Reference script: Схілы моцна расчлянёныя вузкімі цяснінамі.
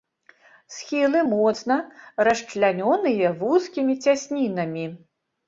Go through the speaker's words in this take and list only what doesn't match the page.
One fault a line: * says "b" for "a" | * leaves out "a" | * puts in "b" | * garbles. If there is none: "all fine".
all fine